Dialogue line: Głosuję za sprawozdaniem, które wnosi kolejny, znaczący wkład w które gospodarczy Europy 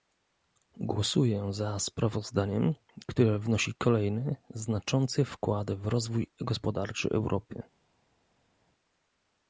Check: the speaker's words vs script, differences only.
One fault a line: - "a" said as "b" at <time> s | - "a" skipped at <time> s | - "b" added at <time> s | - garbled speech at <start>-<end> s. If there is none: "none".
- "które" said as "rozwój" at 5.9 s